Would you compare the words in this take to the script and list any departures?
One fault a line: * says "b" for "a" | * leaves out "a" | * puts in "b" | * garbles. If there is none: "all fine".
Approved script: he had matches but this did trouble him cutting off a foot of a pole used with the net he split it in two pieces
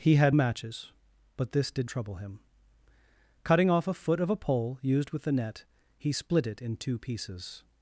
all fine